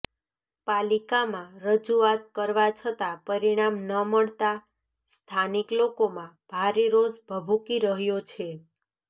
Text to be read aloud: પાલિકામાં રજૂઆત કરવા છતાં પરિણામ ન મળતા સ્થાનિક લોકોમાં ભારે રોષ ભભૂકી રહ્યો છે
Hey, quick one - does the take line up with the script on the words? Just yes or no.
yes